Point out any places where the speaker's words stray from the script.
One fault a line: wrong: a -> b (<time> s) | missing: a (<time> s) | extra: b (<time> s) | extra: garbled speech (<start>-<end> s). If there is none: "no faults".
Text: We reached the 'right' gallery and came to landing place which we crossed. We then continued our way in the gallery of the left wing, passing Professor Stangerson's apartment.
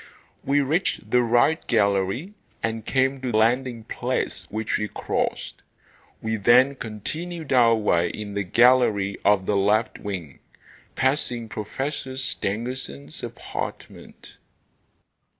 no faults